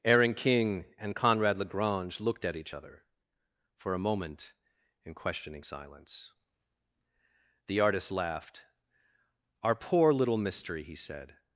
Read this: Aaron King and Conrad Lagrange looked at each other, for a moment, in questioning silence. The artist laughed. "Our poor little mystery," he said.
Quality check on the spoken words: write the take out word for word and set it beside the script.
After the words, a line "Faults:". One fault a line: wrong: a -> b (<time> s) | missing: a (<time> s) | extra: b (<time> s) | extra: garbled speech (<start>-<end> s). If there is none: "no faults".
Aaron King and Conrad Lagrange looked at each other, for a moment, in questioning silence. The artist laughed. "Our poor little mystery," he said.
Faults:
no faults